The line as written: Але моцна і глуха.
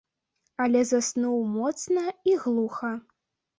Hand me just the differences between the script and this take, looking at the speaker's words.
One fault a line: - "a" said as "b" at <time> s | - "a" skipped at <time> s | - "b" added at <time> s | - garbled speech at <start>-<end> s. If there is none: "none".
- "заснуў" added at 0.9 s